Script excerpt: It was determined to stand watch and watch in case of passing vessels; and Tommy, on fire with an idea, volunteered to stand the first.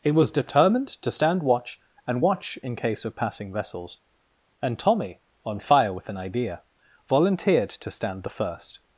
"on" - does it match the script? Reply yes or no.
yes